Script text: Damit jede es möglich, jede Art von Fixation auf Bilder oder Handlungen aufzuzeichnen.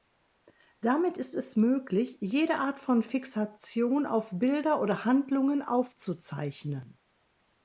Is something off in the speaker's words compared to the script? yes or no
yes